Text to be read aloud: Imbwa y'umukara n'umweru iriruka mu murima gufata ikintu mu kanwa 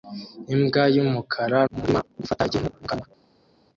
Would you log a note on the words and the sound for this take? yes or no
yes